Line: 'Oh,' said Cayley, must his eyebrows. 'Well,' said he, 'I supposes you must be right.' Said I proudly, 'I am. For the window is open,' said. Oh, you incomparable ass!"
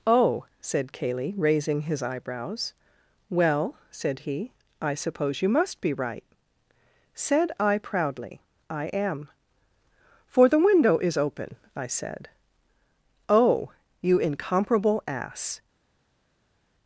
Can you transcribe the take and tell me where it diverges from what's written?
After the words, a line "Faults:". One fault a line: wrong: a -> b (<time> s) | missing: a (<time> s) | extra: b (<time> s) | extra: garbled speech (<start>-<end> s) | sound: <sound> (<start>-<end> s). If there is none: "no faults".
'Oh,' said Cayley, raising his eyebrows. 'Well,' said he, 'I suppose you must be right.' Said I proudly, 'I am. For the window is open,' I said. Oh, you incomparable ass!"
Faults:
wrong: must -> raising (1.4 s)
wrong: supposes -> suppose (5.0 s)
extra: I (11.8 s)